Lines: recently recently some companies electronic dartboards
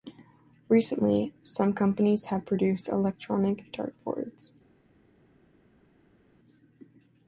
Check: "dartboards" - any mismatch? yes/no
no